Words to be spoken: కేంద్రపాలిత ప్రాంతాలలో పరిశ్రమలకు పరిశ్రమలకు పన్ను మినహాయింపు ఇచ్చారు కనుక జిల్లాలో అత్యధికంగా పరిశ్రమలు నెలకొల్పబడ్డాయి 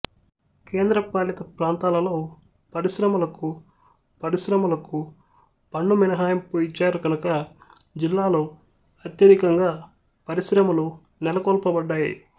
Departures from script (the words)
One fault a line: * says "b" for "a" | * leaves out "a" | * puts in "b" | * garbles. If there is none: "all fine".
all fine